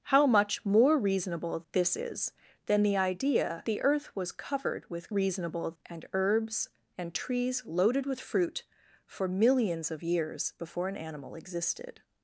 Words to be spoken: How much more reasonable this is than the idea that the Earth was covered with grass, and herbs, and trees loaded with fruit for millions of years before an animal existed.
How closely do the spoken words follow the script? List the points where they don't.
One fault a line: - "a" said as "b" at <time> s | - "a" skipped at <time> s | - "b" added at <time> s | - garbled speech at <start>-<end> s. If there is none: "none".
- "that" skipped at 3.6 s
- "grass" said as "reasonable" at 5.1 s